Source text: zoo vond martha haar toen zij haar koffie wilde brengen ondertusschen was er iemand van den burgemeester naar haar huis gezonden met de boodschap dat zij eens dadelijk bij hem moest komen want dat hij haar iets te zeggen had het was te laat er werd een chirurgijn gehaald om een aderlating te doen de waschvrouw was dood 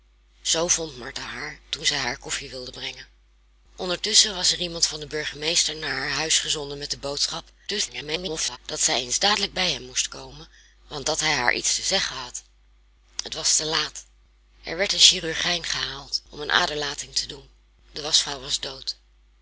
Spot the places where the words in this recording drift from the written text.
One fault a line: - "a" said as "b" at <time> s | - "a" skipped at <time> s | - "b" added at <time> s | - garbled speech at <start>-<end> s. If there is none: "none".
- garbled speech at 7.7-8.6 s